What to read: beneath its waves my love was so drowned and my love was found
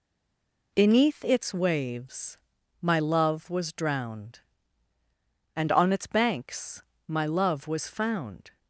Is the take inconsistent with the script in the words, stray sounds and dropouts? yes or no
yes